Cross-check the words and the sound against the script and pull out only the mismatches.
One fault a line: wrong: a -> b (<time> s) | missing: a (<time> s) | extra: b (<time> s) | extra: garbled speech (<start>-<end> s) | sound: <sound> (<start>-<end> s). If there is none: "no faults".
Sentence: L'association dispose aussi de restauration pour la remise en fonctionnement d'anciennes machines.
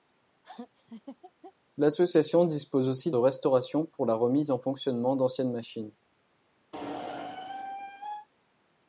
sound: laugh (0.4-1.5 s)
sound: squeak (6.7-8.3 s)